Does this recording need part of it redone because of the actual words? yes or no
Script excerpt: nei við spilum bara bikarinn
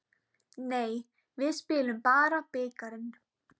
no